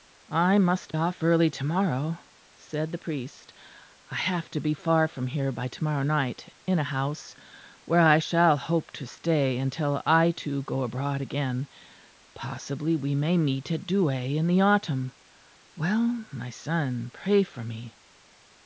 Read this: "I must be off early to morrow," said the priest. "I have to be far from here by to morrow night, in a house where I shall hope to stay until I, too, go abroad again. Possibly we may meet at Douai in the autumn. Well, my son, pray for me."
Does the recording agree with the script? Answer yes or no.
no